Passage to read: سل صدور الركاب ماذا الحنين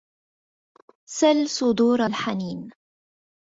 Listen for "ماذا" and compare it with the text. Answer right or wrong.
wrong